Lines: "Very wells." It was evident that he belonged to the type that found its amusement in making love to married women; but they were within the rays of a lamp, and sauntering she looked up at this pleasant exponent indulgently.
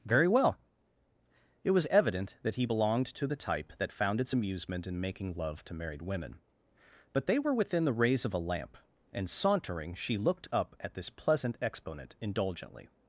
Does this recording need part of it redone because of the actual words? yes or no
yes